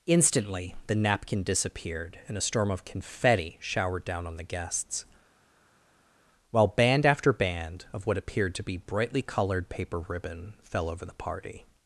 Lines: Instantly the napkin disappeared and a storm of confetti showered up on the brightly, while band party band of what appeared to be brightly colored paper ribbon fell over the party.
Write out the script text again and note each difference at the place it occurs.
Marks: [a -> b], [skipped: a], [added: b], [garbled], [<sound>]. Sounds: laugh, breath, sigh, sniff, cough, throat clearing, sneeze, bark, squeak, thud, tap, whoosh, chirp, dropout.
Instantly the napkin disappeared and a storm of confetti showered [up -> down] on the [brightly, -> guests] while band [party -> after] band of what appeared to be brightly colored paper ribbon fell over the party.